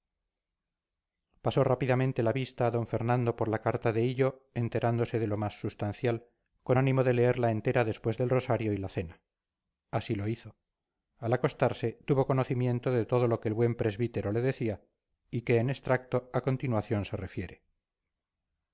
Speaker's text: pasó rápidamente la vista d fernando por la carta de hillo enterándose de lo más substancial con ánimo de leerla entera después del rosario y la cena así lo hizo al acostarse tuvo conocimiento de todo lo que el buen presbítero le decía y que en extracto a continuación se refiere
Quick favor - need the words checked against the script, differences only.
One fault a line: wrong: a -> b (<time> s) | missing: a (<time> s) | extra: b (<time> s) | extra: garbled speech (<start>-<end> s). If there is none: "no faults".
no faults